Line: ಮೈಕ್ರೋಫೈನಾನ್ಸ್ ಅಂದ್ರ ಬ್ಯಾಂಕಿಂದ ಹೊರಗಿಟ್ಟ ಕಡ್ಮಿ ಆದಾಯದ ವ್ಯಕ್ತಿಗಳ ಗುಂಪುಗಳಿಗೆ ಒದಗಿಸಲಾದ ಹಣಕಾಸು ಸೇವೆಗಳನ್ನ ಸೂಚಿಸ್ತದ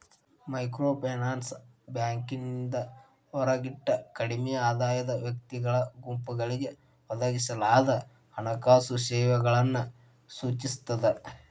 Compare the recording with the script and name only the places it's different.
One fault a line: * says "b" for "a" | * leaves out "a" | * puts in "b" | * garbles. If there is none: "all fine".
* leaves out "ಅಂದ್ರ"